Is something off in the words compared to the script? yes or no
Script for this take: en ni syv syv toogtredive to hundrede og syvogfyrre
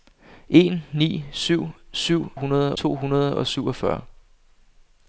yes